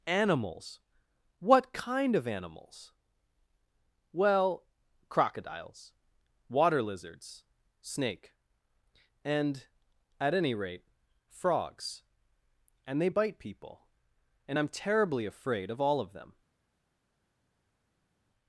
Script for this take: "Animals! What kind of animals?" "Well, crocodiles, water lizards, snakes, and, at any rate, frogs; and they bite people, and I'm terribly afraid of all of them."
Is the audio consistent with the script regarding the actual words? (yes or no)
no